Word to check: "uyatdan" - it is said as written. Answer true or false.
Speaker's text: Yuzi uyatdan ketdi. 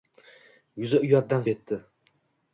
true